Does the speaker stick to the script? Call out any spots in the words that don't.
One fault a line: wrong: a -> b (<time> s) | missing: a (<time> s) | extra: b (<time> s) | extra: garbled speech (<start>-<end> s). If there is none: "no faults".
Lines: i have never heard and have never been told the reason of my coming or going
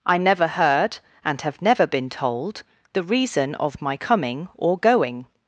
missing: have (0.2 s)